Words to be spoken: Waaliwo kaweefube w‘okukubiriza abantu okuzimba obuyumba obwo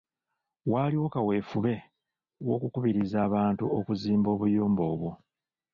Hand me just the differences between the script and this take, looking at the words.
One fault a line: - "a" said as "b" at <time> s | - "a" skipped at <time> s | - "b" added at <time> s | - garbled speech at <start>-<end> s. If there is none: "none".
none